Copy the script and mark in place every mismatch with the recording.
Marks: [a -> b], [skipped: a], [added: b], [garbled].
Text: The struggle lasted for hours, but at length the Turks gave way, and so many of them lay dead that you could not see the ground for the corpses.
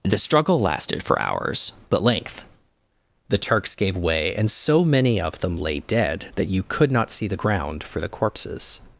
The struggle lasted for hours, but [skipped: at] length the Turks gave way, and so many of them lay dead that you could not see the ground for the corpses.